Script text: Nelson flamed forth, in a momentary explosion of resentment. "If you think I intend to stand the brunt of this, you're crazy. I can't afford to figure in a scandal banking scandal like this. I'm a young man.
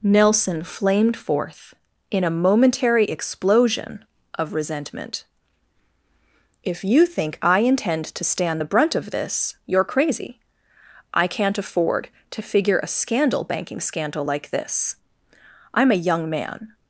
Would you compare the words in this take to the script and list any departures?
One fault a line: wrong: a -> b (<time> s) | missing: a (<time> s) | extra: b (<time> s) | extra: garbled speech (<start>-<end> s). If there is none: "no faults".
missing: in (12.8 s)